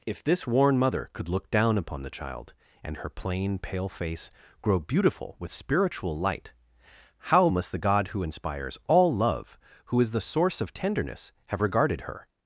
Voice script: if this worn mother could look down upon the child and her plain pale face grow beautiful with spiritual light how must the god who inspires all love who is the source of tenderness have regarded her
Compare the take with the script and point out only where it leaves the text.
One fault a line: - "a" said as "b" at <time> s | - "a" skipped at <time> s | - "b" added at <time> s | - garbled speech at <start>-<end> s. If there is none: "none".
none